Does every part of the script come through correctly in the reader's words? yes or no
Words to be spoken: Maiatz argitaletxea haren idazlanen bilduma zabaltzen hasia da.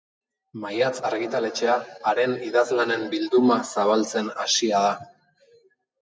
yes